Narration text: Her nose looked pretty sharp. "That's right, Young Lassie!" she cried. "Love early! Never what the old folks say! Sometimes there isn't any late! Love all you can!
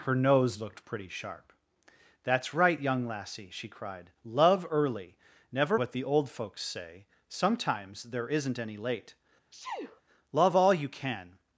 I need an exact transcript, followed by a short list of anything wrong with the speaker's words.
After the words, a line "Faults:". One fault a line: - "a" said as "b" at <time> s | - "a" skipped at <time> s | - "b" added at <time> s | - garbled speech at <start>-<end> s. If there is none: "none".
Her nose looked pretty sharp. "That's right, Young Lassie!" she cried. "Love early! Never what the old folks say! Sometimes there isn't any late! Love all you can!
Faults:
none